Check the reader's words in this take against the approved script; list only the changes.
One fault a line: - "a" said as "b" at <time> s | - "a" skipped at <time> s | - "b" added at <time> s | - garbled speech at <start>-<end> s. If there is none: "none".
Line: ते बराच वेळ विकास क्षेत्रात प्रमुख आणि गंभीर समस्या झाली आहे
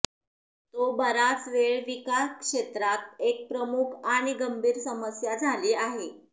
- "ते" said as "तो" at 0.7 s
- "एक" added at 3.2 s